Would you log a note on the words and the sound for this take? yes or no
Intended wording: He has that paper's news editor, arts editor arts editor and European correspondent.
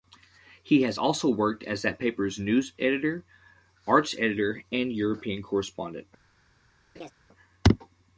yes